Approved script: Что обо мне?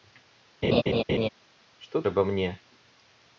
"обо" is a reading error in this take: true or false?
false